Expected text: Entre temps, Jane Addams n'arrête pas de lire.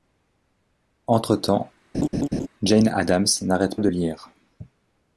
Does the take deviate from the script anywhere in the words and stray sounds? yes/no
yes